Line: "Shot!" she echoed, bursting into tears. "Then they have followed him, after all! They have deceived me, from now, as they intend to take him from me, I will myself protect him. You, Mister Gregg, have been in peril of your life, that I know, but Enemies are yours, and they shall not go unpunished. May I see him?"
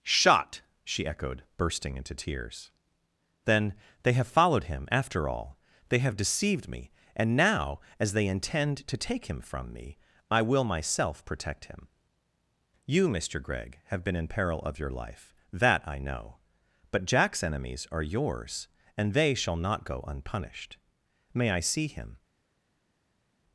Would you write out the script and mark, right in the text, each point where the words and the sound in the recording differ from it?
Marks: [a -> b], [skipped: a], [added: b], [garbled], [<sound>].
"Shot!" she echoed, bursting into tears. "Then they have followed him, after all! They have deceived me, [from -> and] now, as they intend to take him from me, I will myself protect him. You, Mister Gregg, have been in peril of your life, that I know, but [added: Jack's] Enemies are yours, and they shall not go unpunished. May I see him?"